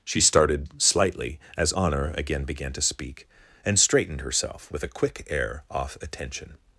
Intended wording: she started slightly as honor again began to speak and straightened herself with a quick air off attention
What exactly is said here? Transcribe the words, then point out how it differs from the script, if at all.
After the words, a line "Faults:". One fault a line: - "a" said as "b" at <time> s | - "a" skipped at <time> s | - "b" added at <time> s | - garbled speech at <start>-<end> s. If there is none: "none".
she started slightly as honor again began to speak and straightened herself with a quick air off attention
Faults:
none